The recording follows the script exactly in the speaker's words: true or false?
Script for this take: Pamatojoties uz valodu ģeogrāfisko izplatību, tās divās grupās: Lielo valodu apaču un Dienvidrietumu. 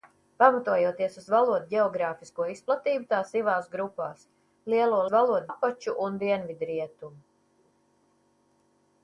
true